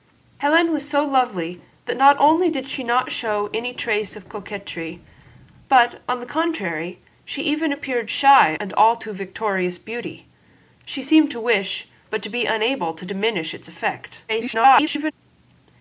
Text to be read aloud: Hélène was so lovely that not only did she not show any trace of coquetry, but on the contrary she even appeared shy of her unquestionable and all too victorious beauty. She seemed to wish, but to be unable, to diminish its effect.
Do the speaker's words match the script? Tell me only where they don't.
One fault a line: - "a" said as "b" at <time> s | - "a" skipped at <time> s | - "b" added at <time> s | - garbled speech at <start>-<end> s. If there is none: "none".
- "of her unquestionable" skipped at 8.6 s
- garbled speech at 14.3-15.1 s